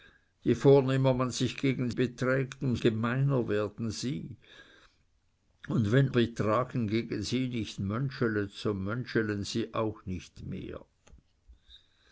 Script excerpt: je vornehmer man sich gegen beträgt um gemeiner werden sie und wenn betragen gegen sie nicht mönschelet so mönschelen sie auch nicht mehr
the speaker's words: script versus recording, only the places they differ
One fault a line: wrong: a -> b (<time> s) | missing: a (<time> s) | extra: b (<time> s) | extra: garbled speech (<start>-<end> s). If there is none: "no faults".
no faults